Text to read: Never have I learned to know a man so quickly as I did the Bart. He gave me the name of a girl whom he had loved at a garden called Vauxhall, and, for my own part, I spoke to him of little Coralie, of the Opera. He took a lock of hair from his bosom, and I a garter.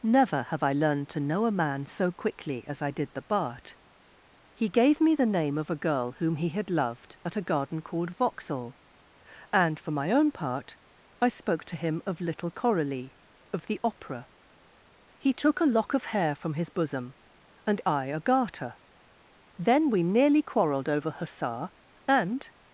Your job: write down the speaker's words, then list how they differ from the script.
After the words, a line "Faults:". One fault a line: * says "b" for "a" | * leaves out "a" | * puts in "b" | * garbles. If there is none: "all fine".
Never have I learned to know a man so quickly as I did the Bart. He gave me the name of a girl whom he had loved at a garden called Vauxhall, and, for my own part, I spoke to him of little Coralie, of the Opera. He took a lock of hair from his bosom, and I a garter. Then we nearly quarrelled over hussar and
Faults:
* puts in "Then we nearly quarrelled over hussar and"